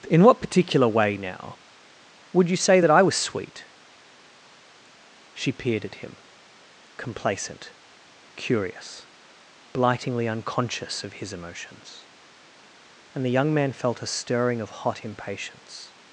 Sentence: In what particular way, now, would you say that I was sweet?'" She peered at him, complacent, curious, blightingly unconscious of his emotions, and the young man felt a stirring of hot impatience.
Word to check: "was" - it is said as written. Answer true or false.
true